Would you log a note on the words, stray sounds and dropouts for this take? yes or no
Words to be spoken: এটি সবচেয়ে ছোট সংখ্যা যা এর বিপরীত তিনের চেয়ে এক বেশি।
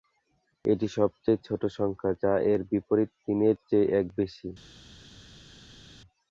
no